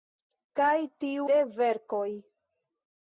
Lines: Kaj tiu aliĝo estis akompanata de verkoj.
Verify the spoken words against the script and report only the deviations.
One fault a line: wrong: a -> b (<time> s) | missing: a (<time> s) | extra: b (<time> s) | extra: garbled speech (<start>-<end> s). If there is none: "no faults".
missing: aliĝo estis akompanata (1.3 s)